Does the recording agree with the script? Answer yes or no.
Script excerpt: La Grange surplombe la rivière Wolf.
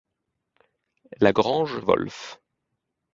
no